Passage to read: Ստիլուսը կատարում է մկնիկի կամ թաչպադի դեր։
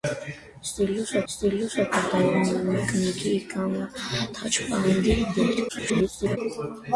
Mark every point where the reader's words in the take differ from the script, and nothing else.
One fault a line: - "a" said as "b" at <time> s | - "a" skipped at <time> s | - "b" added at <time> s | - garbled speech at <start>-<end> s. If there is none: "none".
- "ստիլուսը" added at 1.3 s
- garbled speech at 5.7-6.4 s